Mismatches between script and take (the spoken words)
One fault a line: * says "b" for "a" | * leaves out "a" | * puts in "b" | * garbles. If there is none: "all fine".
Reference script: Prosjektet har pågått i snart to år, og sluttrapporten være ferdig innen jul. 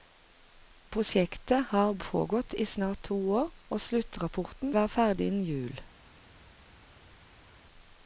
all fine